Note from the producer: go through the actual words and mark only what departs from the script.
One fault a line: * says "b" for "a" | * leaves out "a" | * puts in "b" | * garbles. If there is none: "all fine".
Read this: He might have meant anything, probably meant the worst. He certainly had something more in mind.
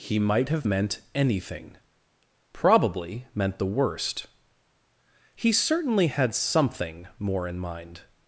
all fine